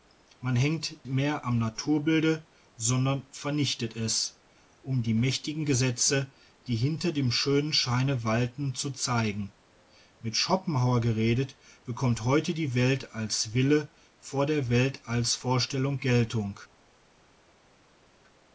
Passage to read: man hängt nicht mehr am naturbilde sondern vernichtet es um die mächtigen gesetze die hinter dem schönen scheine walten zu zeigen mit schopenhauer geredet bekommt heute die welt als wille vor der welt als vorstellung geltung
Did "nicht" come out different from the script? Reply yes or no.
yes